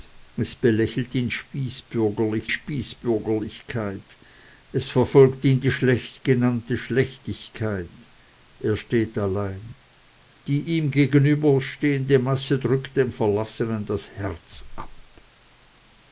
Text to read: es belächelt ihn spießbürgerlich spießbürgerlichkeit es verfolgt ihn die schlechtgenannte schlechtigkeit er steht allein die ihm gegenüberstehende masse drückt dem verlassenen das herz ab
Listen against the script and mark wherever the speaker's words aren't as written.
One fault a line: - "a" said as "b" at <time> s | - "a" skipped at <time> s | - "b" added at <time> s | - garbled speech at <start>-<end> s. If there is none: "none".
none